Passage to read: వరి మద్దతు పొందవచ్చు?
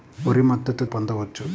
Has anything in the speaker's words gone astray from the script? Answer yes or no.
no